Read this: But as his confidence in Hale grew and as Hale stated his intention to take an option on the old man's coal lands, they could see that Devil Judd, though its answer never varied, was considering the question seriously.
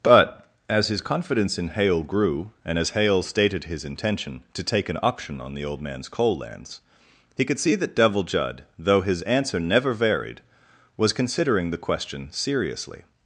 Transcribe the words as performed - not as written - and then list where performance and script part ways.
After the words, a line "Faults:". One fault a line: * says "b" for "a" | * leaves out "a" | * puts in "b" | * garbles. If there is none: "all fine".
But as his confidence in Hale grew and as Hale stated his intention to take an option on the old man's coal lands, he could see that Devil Judd, though his answer never varied, was considering the question seriously.
Faults:
* says "he" for "they"
* says "his" for "its"